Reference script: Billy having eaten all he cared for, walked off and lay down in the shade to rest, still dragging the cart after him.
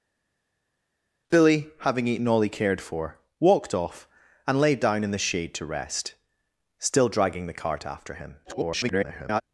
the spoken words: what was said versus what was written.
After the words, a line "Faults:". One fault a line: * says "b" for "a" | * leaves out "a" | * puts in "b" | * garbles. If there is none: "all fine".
Billy having eaten all he cared for, walked off and lay down in the shade to rest, still dragging the cart after him. [garbled]
Faults:
* garbles